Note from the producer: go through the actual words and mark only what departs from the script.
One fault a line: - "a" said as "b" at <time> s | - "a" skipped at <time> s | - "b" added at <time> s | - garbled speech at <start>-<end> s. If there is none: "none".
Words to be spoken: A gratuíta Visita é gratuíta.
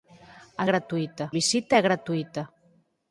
none